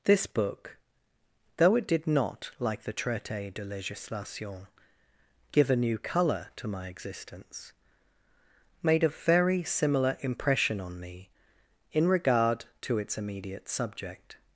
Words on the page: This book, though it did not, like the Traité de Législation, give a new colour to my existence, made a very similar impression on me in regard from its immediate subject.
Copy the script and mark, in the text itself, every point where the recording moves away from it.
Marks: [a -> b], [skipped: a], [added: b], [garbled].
This book, though it did not, like the Traité de Législation, give a new colour to my existence, made a very similar impression on me in regard [from -> to] its immediate subject.